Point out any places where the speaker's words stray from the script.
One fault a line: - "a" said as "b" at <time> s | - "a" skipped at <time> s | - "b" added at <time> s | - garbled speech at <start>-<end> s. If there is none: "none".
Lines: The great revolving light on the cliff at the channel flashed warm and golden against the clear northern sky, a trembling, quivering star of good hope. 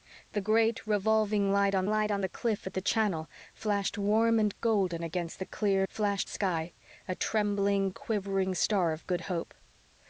- "light on" added at 1.9 s
- "northern" said as "flashed" at 5.9 s